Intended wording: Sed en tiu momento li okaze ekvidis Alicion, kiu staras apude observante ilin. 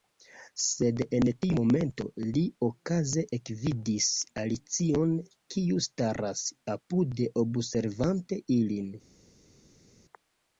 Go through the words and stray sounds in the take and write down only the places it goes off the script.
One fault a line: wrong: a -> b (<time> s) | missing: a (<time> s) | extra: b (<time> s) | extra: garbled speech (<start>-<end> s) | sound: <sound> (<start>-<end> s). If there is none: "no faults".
no faults